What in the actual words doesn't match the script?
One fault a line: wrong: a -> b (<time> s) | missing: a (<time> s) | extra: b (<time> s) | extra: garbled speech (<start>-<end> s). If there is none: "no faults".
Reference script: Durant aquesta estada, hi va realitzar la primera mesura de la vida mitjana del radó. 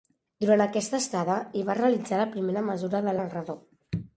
missing: la vida mitjana (3.1 s)